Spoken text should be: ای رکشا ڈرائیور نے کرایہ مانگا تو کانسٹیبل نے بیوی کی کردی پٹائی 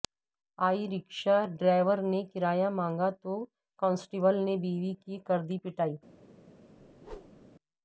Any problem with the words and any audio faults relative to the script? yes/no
yes